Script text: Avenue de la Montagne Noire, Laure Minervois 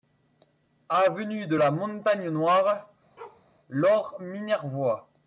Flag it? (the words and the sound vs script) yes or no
yes